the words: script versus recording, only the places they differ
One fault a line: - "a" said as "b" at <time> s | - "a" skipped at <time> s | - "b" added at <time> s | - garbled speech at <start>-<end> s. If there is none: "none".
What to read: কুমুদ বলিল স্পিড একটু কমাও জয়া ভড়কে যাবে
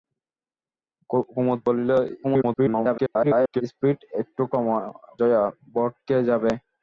- garbled speech at 2.2-3.6 s
- "কমাও" skipped at 4.4 s